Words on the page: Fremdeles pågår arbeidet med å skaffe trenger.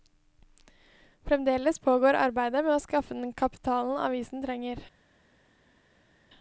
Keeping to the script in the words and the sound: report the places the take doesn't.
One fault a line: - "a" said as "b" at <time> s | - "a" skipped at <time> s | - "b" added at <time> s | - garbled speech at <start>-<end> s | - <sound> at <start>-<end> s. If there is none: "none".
- "den kapitalen avisen" added at 3.1 s